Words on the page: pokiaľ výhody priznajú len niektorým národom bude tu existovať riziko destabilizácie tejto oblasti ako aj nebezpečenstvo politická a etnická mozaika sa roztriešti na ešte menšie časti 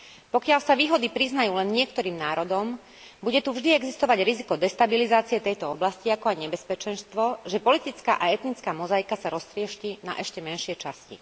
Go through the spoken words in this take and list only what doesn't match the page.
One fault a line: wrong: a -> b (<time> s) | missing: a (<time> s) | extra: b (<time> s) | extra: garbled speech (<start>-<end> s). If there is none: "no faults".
extra: sa (0.6 s)
extra: vždy (3.5 s)
extra: že (7.5 s)